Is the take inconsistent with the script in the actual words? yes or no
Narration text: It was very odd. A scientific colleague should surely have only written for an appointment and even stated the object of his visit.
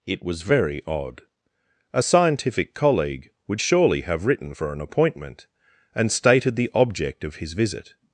yes